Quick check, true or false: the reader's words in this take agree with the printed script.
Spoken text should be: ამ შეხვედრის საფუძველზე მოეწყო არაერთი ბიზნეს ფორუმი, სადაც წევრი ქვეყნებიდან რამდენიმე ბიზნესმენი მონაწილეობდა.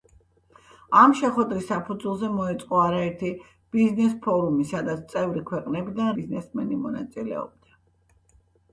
false